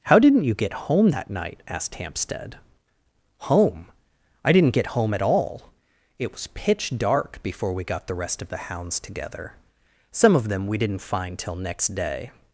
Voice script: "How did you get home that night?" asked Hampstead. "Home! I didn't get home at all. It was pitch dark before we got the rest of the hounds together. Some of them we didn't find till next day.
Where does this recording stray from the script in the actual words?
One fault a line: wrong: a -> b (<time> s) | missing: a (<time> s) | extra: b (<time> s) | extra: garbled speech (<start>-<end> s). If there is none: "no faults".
wrong: did -> didn't (0.2 s)